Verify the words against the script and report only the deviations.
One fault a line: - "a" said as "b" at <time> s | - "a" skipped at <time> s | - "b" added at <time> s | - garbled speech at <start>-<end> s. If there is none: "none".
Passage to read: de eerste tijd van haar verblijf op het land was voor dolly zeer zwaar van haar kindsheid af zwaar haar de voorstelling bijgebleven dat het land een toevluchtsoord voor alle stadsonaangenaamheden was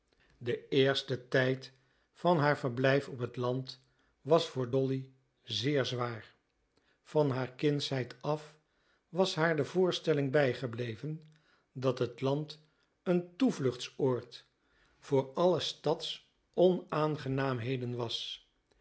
- "zwaar" said as "was" at 9.1 s